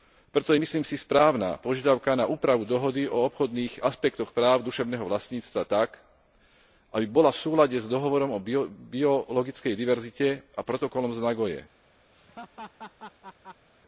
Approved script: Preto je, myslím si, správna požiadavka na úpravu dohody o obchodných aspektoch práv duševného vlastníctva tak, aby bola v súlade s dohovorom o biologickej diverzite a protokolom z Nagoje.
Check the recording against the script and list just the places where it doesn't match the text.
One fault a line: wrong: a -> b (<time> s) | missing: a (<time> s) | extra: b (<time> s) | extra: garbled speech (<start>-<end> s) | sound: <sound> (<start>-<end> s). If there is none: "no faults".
sound: laugh (12.1-13.7 s)